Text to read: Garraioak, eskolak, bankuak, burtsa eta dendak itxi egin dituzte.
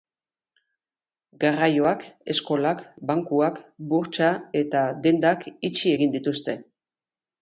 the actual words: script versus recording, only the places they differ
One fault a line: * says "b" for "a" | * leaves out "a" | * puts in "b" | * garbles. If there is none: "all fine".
all fine